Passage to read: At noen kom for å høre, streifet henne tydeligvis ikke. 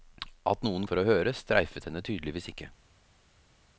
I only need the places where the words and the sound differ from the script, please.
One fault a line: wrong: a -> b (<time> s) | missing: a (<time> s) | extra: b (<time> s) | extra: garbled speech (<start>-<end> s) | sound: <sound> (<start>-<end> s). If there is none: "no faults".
missing: kom (0.9 s)